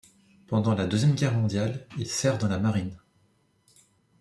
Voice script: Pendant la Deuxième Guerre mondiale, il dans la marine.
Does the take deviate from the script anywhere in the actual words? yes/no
yes